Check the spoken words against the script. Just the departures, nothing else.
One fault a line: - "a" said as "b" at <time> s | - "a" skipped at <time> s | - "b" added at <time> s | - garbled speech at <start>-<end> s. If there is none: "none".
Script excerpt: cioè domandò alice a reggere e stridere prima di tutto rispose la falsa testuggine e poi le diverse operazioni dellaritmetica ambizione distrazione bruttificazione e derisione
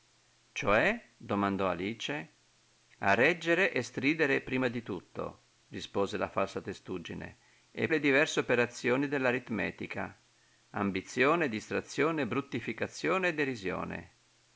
- "poi" skipped at 7.9 s